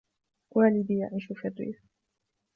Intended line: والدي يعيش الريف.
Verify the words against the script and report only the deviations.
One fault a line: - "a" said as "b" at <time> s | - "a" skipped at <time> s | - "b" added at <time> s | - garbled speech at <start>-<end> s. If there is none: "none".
- "في" added at 1.2 s